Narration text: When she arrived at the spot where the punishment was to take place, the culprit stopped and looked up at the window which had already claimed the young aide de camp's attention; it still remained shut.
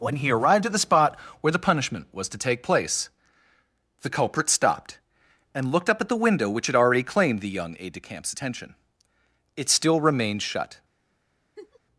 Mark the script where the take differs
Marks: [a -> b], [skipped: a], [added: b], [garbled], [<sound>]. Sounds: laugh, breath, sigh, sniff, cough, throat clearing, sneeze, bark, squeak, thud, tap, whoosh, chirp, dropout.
When [she -> he] arrived at the spot where the punishment was to take place, the culprit stopped and looked up at the window which had already claimed the young aide de camp's attention; it still remained shut. [laugh]